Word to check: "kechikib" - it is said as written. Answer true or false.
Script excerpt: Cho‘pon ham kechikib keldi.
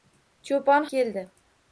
false